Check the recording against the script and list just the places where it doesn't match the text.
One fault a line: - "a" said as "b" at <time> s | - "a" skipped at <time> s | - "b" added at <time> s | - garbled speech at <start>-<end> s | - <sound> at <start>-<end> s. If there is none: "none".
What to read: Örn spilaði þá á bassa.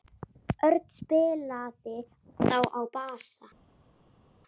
none